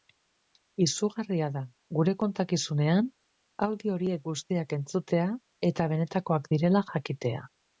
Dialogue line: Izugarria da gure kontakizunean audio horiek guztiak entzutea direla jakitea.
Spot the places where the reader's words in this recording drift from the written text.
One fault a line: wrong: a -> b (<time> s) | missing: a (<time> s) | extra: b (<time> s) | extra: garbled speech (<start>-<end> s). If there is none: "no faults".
extra: eta benetakoak (5.7 s)